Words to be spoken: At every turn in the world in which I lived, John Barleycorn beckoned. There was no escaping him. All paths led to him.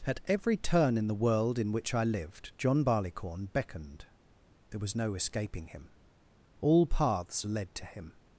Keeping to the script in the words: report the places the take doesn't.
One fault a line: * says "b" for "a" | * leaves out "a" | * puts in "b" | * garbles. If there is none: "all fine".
all fine